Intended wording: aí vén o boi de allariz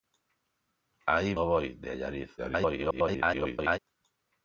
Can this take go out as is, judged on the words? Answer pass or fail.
fail